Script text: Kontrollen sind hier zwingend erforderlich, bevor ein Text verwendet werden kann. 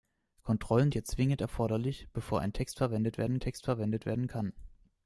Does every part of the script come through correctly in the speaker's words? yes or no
no